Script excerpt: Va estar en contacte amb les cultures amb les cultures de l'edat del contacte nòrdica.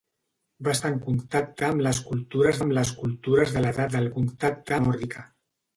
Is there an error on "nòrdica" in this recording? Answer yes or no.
no